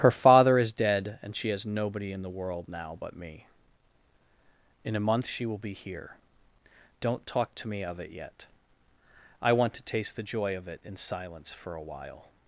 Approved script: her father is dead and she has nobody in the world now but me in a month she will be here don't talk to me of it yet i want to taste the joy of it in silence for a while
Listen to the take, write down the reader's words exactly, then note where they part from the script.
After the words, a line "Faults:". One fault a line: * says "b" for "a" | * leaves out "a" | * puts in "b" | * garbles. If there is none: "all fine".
her father is dead and she has nobody in the world now but me in a month she will be here don't talk to me of it yet i want to taste the joy of it in silence for a while
Faults:
all fine